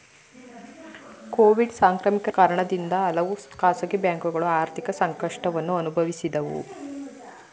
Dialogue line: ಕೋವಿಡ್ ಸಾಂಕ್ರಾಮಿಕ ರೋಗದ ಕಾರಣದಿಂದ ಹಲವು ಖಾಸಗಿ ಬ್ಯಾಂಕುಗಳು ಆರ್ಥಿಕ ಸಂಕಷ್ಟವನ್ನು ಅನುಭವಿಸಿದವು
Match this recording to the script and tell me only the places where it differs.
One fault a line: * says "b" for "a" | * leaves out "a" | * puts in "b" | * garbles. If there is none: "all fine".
* leaves out "ರೋಗದ"